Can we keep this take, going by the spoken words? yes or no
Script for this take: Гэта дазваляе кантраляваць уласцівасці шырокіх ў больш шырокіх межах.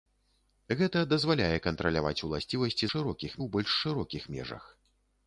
yes